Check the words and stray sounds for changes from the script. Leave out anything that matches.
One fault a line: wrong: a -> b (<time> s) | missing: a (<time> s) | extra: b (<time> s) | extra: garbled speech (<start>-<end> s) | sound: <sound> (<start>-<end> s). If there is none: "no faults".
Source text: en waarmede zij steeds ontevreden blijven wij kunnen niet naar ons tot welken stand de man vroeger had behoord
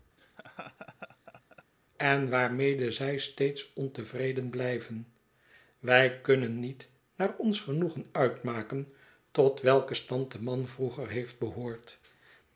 sound: laugh (0.2-1.6 s)
extra: genoegen uitmaken (7.6 s)
wrong: had -> heeft (11.1 s)